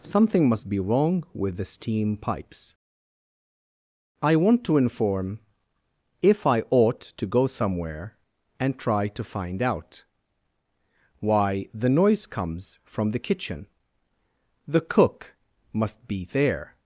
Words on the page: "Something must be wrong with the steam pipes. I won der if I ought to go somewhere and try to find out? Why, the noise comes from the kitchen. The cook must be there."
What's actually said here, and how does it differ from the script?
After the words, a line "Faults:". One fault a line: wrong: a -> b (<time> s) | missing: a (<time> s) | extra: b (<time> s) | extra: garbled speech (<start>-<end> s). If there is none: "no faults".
"Something must be wrong with the steam pipes. I want to inform if I ought to go somewhere and try to find out? Why, the noise comes from the kitchen. The cook must be there."
Faults:
wrong: won der -> want to inform (4.3 s)